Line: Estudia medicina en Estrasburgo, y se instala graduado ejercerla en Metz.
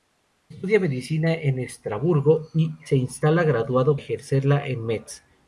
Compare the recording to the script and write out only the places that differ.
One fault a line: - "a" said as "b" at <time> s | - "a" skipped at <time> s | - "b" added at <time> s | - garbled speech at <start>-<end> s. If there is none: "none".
none